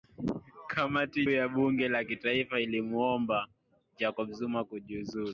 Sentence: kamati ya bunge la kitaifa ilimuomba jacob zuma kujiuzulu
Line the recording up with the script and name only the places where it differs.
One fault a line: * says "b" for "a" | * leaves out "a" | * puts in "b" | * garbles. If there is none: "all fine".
all fine